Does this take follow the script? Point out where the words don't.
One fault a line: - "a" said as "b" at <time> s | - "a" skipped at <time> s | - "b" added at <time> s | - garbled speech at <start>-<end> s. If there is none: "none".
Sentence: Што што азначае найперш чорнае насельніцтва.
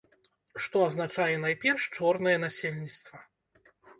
- "што" skipped at 0.8 s